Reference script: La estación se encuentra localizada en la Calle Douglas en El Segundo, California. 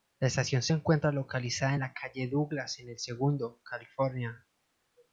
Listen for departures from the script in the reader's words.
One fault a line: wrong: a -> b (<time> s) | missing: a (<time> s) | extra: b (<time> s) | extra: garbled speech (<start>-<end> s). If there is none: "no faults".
no faults